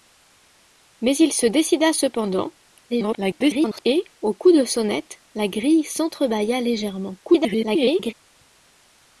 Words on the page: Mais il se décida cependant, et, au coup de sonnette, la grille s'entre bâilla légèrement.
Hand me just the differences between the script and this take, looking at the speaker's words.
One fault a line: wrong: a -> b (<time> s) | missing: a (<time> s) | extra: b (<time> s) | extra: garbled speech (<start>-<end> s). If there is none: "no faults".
extra: garbled speech (2.9-3.8 s)
extra: garbled speech (7.2-8.1 s)